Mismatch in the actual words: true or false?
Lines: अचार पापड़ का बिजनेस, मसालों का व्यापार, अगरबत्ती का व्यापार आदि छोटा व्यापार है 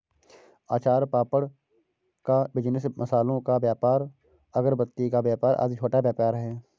false